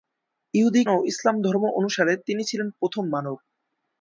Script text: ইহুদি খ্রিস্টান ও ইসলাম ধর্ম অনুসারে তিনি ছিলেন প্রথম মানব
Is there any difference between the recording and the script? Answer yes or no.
yes